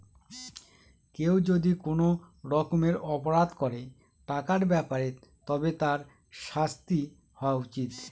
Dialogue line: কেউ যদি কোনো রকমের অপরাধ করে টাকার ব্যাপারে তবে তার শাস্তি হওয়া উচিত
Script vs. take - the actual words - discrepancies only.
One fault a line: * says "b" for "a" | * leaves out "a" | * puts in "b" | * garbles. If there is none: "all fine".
all fine